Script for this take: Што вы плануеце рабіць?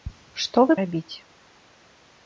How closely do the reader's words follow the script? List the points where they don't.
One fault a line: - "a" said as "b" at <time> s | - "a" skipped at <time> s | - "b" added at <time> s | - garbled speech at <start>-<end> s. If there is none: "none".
- "плануеце" skipped at 0.8 s